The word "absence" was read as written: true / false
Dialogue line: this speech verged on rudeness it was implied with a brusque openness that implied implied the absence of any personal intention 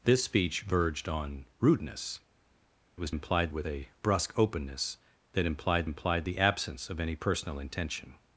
true